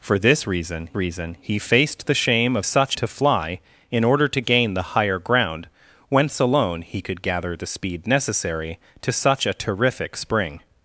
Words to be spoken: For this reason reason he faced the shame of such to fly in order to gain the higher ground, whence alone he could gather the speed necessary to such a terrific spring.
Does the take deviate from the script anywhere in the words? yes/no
no